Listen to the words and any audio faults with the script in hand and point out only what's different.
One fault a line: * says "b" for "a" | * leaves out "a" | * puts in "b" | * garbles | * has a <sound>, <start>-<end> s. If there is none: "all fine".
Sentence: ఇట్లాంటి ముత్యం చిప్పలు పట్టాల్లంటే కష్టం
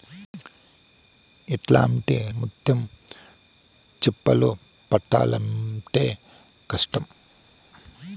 all fine